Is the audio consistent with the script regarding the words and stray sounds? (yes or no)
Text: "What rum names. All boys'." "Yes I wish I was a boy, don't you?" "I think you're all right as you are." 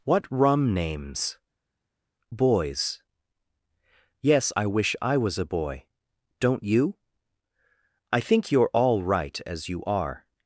no